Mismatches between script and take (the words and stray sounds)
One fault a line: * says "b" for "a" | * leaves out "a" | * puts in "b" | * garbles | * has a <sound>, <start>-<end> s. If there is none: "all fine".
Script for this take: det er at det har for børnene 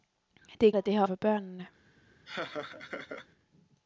* has a laugh, 2.3-3.3 s